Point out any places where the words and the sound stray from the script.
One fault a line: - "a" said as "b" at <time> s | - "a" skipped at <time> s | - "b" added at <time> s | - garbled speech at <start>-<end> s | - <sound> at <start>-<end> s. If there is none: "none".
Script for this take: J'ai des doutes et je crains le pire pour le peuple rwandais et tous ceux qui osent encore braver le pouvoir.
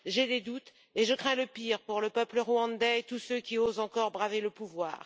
none